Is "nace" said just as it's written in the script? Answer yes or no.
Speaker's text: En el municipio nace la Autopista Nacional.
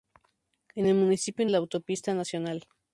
no